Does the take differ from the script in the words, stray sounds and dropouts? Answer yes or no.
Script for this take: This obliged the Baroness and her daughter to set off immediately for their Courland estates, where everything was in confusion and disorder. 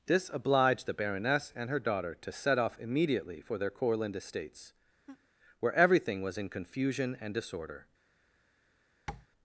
yes